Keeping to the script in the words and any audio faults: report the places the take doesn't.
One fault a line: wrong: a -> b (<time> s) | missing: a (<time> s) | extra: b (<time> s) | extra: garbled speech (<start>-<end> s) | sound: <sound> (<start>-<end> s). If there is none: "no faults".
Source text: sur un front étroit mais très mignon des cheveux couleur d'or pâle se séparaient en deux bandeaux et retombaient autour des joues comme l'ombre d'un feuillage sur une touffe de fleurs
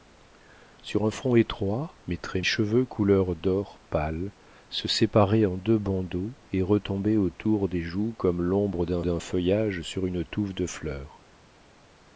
missing: mignon des (2.4 s)
extra: d'un (9.0 s)